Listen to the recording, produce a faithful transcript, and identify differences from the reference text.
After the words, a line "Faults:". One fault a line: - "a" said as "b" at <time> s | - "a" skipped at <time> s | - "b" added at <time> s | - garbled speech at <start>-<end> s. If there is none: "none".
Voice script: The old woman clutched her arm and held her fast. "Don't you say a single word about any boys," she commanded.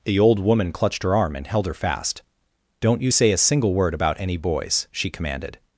The old woman clutched her arm and held her fast. "Don't you say a single word about any boys," she commanded.
Faults:
none